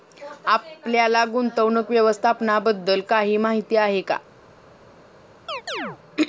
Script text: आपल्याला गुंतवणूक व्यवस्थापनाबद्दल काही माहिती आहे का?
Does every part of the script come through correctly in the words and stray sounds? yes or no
no